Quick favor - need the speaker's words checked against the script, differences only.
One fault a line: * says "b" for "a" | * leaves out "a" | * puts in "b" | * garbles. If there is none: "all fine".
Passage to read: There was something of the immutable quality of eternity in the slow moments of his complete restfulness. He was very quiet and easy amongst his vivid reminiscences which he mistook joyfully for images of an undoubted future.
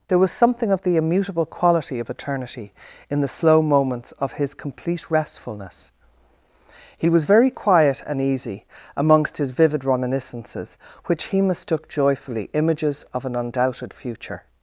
* leaves out "for"